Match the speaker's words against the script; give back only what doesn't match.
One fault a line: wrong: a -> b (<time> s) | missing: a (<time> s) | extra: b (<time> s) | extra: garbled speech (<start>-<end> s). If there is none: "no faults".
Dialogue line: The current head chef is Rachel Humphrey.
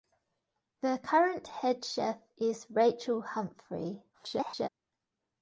extra: garbled speech (4.1-4.7 s)